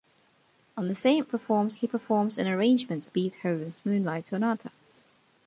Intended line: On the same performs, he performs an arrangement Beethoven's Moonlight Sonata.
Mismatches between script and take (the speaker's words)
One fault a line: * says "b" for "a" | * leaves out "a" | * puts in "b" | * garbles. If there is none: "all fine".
all fine